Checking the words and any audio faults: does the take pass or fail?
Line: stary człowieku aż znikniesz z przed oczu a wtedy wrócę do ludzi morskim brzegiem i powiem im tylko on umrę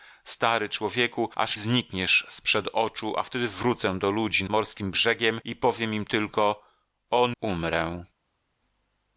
pass